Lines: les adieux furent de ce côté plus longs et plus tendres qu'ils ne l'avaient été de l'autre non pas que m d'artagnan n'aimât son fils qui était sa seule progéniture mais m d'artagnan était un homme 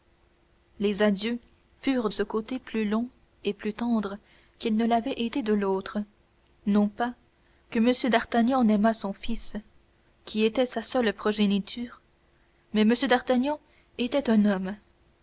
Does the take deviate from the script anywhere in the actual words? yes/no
yes